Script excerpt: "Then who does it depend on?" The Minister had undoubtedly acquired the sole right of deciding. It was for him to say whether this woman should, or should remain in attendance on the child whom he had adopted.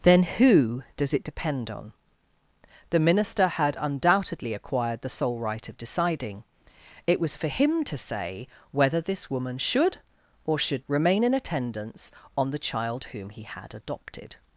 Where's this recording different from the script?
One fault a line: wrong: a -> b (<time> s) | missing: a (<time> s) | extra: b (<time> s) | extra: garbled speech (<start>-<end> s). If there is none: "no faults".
no faults